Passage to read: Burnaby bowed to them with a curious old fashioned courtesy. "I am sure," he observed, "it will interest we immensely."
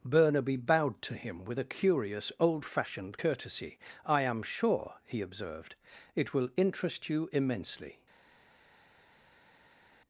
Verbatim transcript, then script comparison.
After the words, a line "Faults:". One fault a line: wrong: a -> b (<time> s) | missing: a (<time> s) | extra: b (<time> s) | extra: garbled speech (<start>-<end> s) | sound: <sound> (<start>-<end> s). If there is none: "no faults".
Burnaby bowed to him with a curious old fashioned courtesy. "I am sure," he observed, "it will interest you immensely."
Faults:
wrong: them -> him (1.1 s)
wrong: we -> you (7.1 s)